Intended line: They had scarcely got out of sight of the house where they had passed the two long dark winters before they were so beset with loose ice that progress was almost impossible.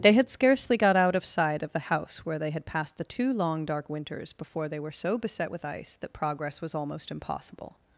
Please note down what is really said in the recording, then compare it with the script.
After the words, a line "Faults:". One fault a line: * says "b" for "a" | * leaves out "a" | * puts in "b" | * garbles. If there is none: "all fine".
They had scarcely got out of sight of the house where they had passed the two long dark winters before they were so beset with ice that progress was almost impossible.
Faults:
* leaves out "loose"